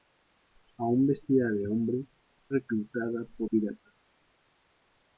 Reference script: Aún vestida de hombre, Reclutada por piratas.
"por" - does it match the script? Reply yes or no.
yes